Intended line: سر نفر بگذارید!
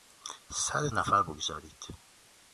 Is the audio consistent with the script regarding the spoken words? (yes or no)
yes